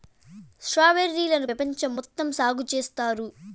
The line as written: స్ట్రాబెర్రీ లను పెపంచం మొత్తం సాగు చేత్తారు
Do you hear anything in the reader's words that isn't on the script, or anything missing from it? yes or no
no